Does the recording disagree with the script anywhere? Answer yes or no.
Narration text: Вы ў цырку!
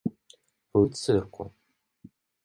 no